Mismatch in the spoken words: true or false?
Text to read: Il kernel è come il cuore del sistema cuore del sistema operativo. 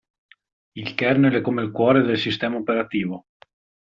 true